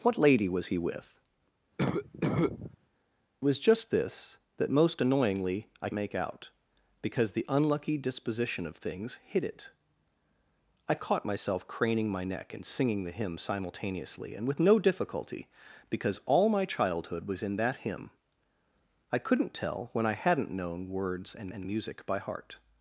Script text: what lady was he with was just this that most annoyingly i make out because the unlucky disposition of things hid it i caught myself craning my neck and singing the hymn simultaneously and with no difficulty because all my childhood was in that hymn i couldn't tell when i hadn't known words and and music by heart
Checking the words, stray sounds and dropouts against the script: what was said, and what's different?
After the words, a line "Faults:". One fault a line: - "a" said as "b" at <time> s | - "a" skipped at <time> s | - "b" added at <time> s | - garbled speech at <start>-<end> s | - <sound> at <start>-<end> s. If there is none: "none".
what lady was he with was just this that most annoyingly i make out because the unlucky disposition of things hid it i caught myself craning my neck and singing the hymn simultaneously and with no difficulty because all my childhood was in that hymn i couldn't tell when i hadn't known words and and music by heart
Faults:
- cough at 1.8-2.8 s